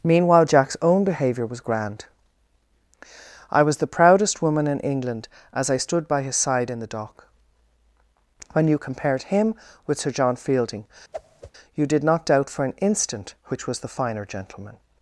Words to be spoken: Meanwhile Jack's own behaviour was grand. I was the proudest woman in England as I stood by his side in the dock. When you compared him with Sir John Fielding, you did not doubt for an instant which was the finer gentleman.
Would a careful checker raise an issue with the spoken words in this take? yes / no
no